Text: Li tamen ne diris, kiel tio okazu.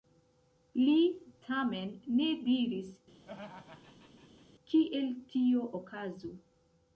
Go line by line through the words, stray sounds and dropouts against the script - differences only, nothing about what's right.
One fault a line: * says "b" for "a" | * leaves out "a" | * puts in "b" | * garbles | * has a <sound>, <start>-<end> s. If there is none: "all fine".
* has a laugh, 3.2-4.5 s